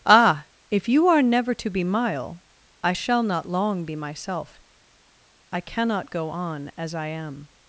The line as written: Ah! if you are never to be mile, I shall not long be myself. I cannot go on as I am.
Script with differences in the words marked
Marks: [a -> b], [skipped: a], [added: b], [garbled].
Ah! if you are never to be mile, I shall not long be myself. I cannot go on as I am.